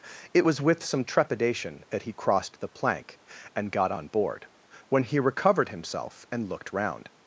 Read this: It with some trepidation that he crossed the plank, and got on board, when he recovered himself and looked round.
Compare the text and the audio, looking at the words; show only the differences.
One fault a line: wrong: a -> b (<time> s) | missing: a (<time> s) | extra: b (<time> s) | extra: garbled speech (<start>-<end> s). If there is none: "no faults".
extra: was (0.4 s)